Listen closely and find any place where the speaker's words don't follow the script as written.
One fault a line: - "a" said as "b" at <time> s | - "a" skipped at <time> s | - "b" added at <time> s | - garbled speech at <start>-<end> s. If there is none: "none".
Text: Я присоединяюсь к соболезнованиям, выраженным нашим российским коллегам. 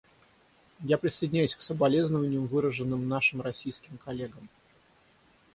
none